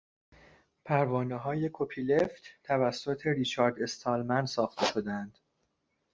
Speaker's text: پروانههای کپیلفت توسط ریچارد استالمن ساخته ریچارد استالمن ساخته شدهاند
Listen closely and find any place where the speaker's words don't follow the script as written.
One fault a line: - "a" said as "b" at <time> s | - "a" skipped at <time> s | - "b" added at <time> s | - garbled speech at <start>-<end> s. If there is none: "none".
- "ریچارد استالمن ساخته" skipped at 4.9 s